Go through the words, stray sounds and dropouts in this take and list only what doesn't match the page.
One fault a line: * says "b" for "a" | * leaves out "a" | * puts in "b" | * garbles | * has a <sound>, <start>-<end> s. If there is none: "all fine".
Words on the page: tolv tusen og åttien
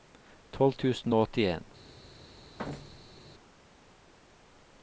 * has a thud, 2.6-3.2 s